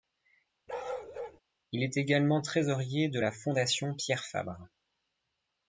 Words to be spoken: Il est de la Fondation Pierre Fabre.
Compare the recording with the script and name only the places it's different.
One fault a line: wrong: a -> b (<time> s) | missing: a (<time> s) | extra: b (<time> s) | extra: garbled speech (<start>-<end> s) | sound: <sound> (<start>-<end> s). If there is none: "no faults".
sound: bark (0.7-1.4 s)
extra: également trésorier (2.0 s)